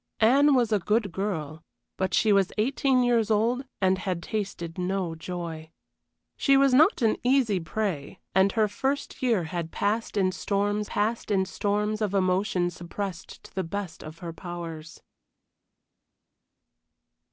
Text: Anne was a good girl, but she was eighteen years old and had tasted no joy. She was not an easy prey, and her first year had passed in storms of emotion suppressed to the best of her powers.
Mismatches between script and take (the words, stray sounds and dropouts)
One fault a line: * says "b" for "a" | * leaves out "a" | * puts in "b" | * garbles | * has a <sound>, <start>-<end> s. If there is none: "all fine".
* puts in "passed in storms"